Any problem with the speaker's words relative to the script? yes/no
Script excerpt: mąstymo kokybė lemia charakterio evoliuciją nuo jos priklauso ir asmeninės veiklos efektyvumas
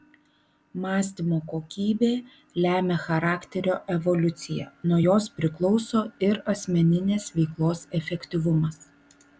no